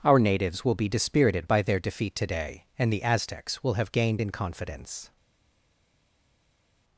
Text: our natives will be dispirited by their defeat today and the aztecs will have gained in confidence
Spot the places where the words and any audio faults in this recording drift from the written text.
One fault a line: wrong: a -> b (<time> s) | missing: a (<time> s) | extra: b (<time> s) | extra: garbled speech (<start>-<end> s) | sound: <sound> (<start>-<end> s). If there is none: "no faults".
no faults